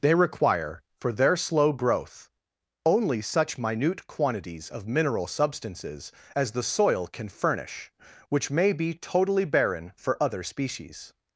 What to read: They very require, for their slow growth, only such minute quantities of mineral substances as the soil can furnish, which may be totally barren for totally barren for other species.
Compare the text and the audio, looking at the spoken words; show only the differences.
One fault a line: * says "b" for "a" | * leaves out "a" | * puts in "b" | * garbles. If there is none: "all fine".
* leaves out "very"
* leaves out "totally barren for"